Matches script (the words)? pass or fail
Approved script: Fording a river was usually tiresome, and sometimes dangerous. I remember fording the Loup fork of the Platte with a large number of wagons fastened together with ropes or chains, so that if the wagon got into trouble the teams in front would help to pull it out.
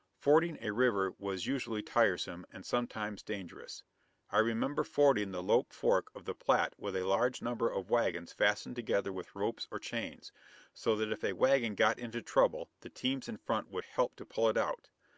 fail